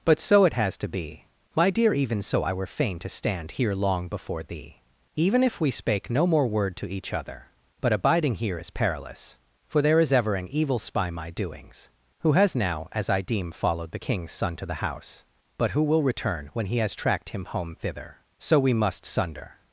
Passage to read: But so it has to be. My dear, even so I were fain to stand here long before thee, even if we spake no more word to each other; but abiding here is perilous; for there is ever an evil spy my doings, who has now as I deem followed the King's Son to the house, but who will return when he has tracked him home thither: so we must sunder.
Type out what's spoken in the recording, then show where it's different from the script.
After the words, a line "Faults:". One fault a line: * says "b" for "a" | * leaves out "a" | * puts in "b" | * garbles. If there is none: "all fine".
But so it has to be. My dear, even so I were fain to stand here long before thee, even if we spake no more word to each other; but abiding here is perilous; for there is ever an evil spy my doings, who has now as I deem followed the King's Son to the house, but who will return when he has tracked him home thither: so we must sunder.
Faults:
all fine